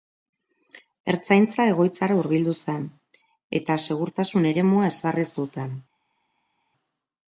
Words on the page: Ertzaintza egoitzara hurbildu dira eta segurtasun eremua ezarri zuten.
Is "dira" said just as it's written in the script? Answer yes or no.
no